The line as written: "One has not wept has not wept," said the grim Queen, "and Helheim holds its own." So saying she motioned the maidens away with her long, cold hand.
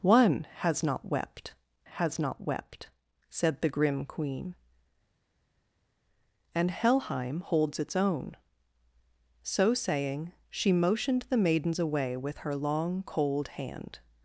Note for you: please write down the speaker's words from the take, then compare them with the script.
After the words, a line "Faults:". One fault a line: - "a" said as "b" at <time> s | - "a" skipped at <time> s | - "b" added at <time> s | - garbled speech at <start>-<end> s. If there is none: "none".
"One has not wept has not wept," said the grim Queen, "and Helheim holds its own." So saying she motioned the maidens away with her long, cold hand.
Faults:
none